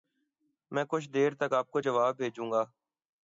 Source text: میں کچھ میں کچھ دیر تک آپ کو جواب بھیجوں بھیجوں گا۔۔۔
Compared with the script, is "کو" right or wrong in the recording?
right